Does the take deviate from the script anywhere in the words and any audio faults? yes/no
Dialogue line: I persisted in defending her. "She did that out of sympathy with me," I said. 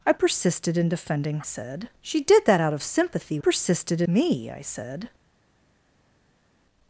yes